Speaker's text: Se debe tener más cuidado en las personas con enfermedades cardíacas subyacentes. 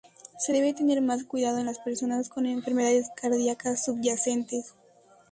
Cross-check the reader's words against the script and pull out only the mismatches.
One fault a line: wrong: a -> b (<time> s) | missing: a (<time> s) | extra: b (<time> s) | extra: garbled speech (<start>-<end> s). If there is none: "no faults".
no faults